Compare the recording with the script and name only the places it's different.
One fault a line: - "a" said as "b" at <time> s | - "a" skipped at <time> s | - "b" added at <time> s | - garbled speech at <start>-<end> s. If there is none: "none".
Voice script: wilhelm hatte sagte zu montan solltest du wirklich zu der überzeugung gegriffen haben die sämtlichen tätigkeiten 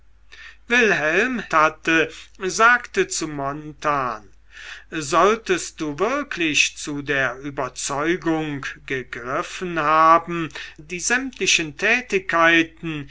none